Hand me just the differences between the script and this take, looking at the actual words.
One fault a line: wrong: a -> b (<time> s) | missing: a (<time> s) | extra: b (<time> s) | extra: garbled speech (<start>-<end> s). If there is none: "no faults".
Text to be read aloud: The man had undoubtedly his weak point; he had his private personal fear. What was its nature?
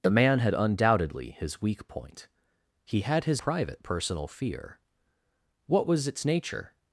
no faults